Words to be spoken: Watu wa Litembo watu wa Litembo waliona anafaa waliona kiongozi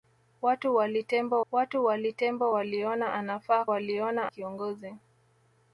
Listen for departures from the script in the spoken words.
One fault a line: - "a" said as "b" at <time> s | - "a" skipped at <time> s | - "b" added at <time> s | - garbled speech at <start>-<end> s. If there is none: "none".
none